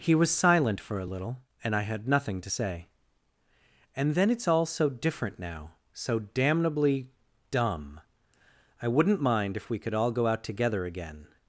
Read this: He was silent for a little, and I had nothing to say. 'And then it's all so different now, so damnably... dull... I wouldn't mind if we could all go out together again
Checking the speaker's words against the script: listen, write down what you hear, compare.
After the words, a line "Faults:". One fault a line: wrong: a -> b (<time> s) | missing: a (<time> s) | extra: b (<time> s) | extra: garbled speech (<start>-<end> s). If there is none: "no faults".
He was silent for a little, and I had nothing to say. 'And then it's all so different now, so damnably... dumb... I wouldn't mind if we could all go out together again
Faults:
wrong: dull -> dumb (7.5 s)